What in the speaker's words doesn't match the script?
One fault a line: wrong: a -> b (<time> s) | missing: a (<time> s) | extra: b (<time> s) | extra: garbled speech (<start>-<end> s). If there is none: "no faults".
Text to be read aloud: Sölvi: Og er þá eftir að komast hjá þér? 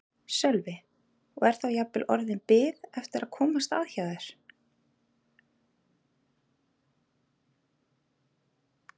extra: jafnvel orðin bið (1.8 s)
extra: að (3.8 s)